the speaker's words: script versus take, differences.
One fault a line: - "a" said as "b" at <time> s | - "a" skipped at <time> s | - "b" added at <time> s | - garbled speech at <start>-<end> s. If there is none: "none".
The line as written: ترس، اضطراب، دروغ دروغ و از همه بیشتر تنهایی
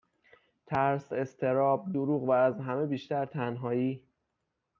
- "دروغ" skipped at 2.2 s